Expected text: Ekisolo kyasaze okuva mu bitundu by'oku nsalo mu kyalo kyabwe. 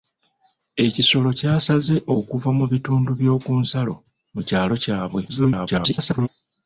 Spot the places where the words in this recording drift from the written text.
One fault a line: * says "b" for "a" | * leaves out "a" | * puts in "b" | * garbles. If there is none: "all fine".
* garbles